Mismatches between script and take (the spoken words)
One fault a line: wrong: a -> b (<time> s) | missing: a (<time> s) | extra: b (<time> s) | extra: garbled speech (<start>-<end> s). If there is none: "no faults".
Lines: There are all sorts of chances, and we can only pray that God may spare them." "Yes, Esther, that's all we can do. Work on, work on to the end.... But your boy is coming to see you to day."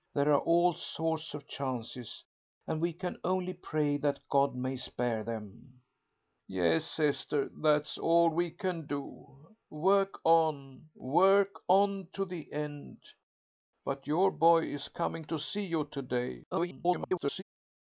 extra: garbled speech (16.5-17.4 s)